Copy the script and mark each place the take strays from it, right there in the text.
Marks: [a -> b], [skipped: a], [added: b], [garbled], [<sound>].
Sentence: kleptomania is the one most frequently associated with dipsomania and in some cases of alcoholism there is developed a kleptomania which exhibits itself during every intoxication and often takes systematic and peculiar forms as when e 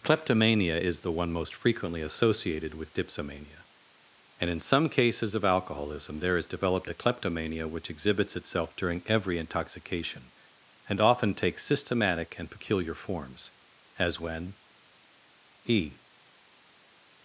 kleptomania is the one most frequently associated with dipsomania and in some cases of alcoholism there is developed a kleptomania which exhibits itself during every intoxication and often takes systematic and peculiar forms as when e